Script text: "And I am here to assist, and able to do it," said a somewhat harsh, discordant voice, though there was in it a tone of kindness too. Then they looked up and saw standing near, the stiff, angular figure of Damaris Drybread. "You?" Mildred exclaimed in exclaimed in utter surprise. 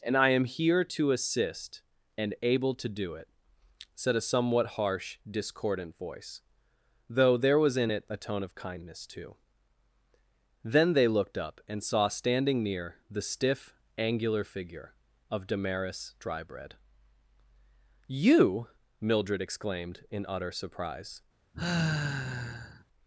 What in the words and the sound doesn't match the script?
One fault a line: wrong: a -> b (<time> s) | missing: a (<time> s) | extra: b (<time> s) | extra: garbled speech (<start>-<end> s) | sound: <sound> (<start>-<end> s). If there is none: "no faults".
missing: exclaimed in (20.2 s)
sound: sigh (21.5-22.8 s)